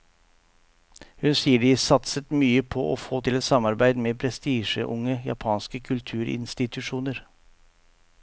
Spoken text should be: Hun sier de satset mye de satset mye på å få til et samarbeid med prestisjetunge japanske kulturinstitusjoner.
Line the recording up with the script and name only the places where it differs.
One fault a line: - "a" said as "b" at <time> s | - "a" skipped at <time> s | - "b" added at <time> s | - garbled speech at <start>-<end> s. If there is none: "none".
- "de satset mye" skipped at 2.6 s